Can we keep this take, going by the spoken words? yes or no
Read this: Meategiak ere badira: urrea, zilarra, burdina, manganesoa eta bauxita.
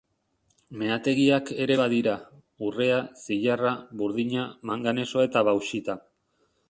yes